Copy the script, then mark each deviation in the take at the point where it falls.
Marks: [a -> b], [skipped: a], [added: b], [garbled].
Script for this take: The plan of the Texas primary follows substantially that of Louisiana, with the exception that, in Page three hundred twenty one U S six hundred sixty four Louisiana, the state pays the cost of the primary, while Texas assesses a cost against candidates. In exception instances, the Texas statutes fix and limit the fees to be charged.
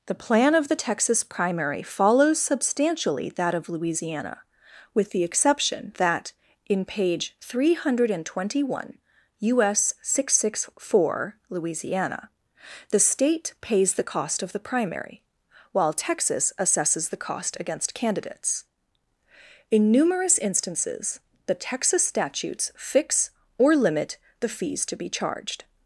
The plan of the Texas primary follows substantially that of Louisiana, with the exception that, in Page three hundred twenty one U S six hundred sixty four Louisiana, the state pays the cost of the primary, while Texas assesses [a -> the] cost against candidates. In [exception -> numerous] instances, the Texas statutes fix [and -> or] limit the fees to be charged.